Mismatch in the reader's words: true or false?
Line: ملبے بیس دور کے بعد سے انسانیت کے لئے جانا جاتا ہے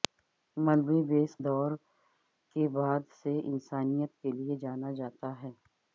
false